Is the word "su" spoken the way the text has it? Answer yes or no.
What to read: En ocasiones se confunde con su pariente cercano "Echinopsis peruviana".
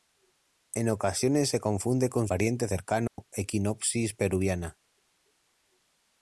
no